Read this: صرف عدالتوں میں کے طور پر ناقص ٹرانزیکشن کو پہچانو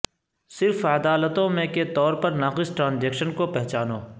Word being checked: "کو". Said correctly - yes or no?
yes